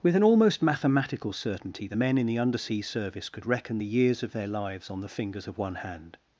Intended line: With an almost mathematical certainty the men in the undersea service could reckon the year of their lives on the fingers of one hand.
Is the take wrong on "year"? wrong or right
wrong